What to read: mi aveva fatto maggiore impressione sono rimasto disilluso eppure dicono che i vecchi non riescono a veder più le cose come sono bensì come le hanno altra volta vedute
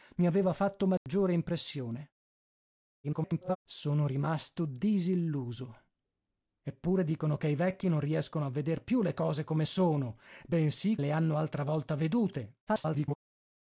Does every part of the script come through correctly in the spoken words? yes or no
no